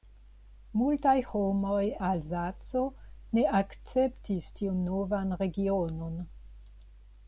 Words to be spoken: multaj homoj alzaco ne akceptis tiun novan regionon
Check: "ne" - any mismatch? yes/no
no